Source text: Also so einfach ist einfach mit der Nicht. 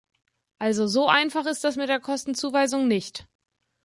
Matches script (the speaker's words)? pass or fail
fail